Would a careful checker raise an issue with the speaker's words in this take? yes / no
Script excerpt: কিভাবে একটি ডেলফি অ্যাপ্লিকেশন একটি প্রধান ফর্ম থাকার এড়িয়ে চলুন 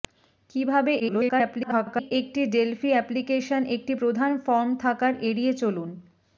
yes